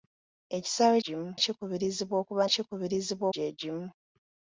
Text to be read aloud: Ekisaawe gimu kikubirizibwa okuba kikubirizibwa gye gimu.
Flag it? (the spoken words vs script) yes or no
no